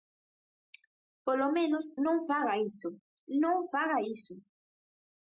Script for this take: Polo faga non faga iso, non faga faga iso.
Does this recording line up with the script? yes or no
no